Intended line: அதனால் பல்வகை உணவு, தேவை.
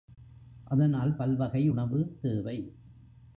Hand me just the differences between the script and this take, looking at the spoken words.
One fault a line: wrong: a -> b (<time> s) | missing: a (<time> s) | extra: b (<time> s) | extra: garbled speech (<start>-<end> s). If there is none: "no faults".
no faults